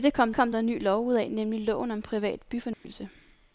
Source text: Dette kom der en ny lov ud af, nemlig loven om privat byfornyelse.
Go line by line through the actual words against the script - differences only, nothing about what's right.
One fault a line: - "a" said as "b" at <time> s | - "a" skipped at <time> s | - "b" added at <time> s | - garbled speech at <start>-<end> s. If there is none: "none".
- "kom" added at 0.3 s